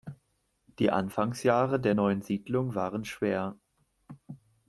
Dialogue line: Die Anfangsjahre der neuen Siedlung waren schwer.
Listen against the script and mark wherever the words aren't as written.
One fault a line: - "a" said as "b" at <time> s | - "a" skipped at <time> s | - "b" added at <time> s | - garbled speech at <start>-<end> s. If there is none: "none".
none